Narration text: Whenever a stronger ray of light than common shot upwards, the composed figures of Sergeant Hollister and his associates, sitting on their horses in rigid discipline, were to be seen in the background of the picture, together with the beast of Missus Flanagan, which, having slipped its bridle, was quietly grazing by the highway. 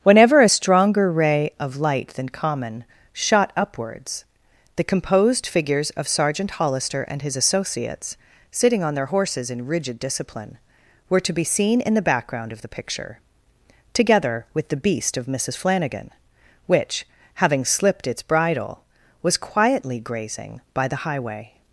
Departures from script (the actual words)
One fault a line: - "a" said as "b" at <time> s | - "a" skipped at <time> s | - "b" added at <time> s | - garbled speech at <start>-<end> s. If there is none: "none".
none